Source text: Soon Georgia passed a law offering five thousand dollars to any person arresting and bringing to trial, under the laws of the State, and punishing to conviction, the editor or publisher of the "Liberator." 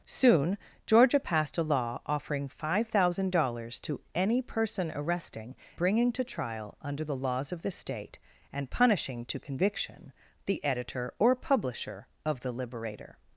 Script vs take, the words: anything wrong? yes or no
yes